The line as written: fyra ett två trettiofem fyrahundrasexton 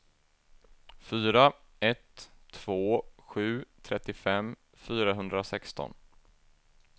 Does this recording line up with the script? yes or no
no